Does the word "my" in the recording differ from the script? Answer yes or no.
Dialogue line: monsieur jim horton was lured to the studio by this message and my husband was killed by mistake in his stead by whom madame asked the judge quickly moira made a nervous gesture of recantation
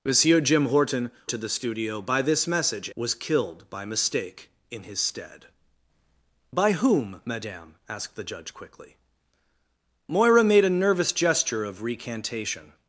yes